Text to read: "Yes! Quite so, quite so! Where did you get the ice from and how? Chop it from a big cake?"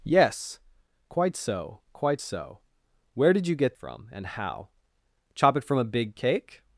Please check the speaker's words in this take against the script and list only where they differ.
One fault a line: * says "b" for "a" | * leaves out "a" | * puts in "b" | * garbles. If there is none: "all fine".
* leaves out "the ice"